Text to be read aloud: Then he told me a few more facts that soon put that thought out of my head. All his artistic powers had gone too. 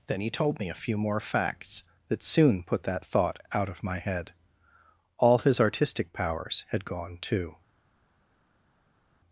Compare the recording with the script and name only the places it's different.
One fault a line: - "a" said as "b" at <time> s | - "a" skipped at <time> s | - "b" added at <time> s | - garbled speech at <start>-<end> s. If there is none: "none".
none